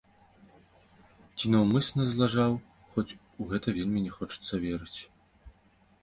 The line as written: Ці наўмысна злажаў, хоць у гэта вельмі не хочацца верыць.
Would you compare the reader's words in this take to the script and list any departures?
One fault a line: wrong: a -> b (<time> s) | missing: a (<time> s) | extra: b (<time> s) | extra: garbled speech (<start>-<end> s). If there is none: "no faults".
no faults